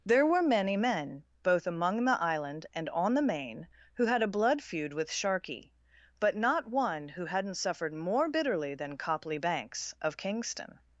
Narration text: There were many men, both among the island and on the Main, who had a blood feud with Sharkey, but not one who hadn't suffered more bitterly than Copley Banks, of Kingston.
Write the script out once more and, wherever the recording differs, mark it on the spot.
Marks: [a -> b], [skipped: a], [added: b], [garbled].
There were many men, both among the island and on the Main, who had a blood feud with Sharkey, but not one who hadn't suffered more bitterly than Copley Banks, of Kingston.